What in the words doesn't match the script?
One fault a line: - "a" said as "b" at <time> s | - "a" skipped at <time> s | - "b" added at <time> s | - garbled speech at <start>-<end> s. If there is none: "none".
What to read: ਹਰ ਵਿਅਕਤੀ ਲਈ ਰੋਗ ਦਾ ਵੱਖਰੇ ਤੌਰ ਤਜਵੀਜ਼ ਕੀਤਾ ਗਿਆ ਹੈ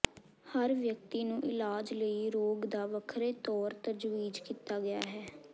- "ਨੂੰ ਇਲਾਜ" added at 1.2 s